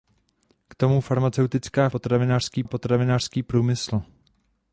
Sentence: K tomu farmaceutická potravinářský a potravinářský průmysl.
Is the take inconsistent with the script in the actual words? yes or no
no